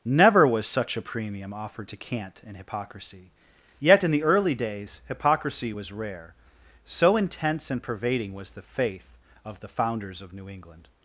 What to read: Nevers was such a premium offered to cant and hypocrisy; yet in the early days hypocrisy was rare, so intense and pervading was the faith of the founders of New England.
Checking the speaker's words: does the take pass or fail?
fail